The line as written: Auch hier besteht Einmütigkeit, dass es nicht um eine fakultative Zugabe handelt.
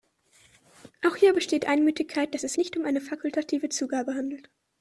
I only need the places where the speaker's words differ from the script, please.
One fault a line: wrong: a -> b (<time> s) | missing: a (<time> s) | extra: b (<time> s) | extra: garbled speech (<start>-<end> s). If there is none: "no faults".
no faults